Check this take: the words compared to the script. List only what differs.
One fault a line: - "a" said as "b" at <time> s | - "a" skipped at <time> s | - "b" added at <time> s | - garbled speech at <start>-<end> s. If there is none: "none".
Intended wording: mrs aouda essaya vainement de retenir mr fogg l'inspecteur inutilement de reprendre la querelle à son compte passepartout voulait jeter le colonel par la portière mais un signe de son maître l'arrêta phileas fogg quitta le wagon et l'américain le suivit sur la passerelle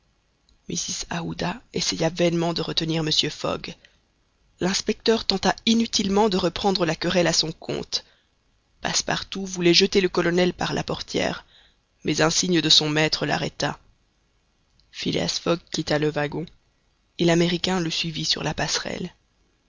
- "tenta" added at 5.2 s